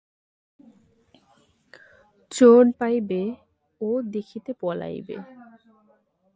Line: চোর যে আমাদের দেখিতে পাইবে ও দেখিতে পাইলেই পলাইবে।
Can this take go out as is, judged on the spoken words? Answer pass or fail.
fail